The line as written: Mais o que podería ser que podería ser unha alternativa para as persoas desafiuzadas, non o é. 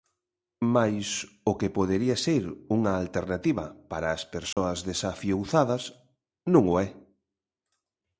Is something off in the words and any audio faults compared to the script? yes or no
yes